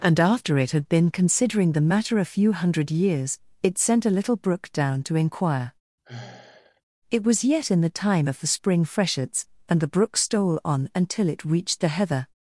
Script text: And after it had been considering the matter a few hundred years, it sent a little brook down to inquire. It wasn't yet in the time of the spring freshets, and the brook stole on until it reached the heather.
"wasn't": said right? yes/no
no